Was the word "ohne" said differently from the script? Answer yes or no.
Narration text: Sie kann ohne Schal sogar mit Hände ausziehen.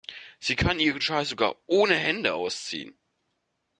yes